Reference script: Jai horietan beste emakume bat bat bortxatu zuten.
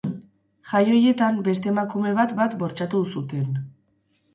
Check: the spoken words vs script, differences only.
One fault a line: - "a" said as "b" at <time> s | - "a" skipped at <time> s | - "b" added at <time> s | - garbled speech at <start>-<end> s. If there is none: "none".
none